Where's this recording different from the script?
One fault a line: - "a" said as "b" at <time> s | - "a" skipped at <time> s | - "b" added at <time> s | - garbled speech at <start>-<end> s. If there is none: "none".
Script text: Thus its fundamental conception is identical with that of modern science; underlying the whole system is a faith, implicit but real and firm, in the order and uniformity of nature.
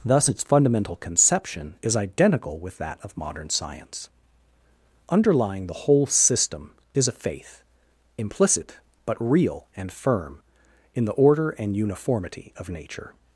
none